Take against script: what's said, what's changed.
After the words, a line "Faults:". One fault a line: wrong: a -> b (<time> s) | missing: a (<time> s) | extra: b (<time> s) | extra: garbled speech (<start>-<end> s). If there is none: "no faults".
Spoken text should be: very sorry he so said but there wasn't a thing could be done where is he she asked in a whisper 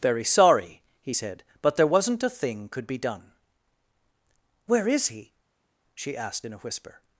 very sorry he said but there wasn't a thing could be done where is he she asked in a whisper
Faults:
missing: so (1.1 s)